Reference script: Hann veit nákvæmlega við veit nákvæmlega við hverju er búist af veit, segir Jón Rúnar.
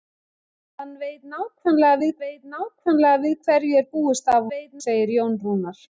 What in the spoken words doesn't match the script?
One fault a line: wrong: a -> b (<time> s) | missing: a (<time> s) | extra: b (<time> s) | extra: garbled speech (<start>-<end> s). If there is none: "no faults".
no faults